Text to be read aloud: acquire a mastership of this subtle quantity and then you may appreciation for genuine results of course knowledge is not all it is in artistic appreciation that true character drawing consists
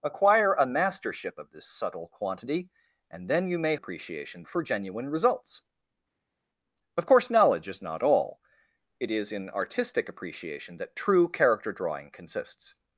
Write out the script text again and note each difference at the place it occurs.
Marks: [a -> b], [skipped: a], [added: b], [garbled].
acquire a mastership of this subtle quantity and then you may appreciation for genuine results of course knowledge is not all it is in artistic appreciation that true character drawing consists